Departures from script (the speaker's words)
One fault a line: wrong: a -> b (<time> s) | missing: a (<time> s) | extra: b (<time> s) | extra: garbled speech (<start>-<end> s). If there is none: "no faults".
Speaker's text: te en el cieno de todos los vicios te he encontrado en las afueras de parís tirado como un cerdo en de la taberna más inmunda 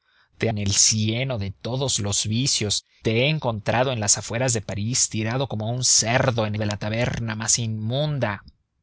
no faults